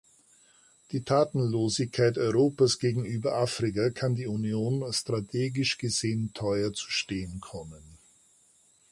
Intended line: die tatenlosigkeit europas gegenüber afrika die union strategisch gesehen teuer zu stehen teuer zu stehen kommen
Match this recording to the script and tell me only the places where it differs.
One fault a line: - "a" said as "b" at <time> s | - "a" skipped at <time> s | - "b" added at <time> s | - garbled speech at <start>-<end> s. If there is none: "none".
- "kann" added at 3.9 s
- "teuer zu stehen" skipped at 7.4 s